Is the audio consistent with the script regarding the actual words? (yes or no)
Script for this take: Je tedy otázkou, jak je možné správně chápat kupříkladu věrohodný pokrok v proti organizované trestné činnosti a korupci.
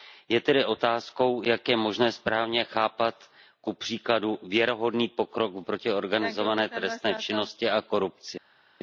yes